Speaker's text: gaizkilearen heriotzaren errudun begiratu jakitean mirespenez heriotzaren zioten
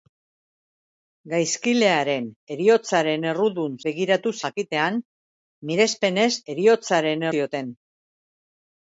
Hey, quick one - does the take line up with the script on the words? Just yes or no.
yes